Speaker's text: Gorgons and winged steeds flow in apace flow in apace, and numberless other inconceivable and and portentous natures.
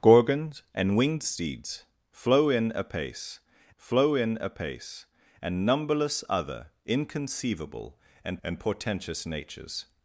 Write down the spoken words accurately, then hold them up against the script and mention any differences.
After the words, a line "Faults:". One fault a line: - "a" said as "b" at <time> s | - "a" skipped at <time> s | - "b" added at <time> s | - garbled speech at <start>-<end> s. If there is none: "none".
Gorgons and winged steeds flow in apace flow in apace, and numberless other inconceivable and and portentous natures.
Faults:
none